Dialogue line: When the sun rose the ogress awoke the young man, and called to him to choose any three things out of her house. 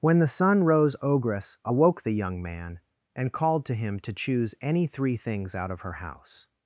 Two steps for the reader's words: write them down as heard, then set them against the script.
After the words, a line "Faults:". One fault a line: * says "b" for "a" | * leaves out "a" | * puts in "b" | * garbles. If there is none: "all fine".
When the sun rose ogress awoke the young man, and called to him to choose any three things out of her house.
Faults:
* leaves out "the"